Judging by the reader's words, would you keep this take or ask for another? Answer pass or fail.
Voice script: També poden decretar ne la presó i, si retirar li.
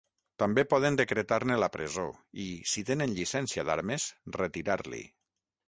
fail